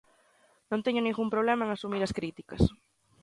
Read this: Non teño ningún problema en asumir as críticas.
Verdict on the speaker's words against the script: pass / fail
pass